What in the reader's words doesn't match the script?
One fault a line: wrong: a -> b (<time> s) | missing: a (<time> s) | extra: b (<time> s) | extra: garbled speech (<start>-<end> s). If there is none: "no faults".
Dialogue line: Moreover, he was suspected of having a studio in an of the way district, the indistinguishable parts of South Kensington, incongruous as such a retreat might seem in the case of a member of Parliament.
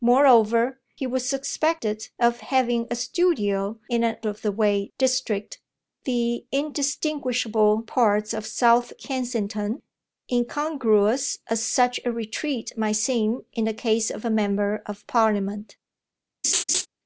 no faults